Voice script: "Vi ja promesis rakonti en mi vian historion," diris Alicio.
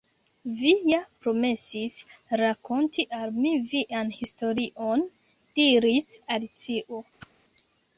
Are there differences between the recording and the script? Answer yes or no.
yes